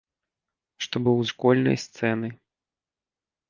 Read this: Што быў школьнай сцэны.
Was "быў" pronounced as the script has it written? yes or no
yes